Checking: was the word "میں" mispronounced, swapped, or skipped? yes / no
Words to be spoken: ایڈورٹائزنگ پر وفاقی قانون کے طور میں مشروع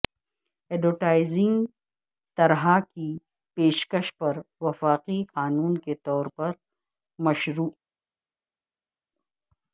yes